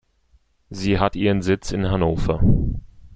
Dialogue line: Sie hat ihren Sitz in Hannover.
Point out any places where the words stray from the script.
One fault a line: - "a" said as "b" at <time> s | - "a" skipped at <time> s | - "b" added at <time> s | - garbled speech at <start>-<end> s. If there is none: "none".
none